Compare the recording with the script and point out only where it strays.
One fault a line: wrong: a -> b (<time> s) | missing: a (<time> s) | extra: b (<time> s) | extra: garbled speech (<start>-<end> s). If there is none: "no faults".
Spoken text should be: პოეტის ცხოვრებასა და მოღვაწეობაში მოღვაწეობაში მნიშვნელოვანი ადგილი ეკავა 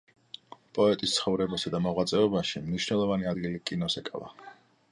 missing: მოღვაწეობაში (2.6 s)
extra: კინოს (3.7 s)